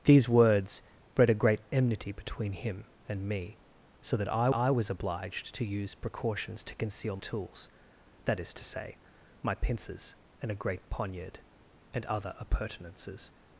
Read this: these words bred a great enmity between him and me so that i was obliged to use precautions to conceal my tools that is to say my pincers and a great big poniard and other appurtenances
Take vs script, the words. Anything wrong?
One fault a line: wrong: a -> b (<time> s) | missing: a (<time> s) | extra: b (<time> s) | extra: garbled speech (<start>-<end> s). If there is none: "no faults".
extra: i (4.5 s)
missing: my (7.2 s)
missing: big (10.9 s)